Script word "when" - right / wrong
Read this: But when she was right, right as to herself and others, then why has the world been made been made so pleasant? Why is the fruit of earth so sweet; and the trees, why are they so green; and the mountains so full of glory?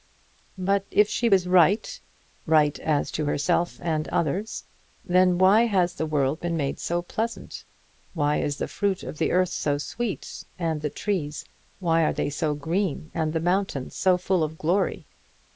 wrong